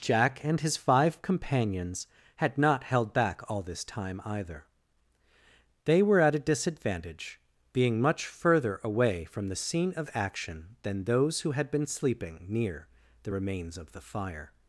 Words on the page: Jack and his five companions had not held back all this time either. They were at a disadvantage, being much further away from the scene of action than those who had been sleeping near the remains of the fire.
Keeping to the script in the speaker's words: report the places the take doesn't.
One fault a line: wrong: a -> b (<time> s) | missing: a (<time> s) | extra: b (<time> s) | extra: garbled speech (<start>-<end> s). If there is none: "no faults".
no faults